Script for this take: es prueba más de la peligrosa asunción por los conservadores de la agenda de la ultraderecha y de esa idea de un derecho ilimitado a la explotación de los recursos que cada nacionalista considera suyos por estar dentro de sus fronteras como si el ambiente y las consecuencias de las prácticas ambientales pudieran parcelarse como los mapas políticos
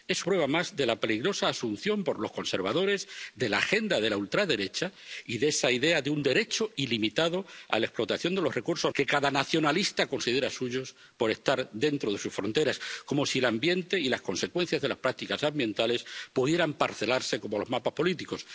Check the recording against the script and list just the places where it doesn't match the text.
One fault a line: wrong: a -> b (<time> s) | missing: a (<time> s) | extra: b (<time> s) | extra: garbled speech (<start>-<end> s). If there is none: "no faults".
no faults